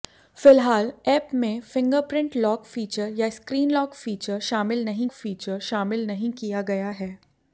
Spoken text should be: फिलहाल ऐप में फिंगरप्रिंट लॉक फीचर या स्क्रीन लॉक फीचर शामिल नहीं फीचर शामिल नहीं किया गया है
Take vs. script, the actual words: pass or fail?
pass